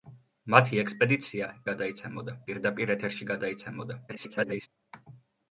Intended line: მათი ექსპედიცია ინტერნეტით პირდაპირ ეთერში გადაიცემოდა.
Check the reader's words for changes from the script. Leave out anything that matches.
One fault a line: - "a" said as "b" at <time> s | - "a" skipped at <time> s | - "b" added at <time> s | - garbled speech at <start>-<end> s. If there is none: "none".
- "ინტერნეტით" said as "გადაიცემოდა" at 1.7 s
- garbled speech at 4.1-4.7 s